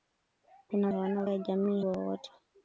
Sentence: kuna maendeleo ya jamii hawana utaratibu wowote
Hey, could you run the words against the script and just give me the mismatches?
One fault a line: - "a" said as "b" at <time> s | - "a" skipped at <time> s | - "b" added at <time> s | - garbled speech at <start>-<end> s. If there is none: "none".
- "maendeleo" said as "hawana" at 0.9 s
- "hawana utaratibu" skipped at 1.8 s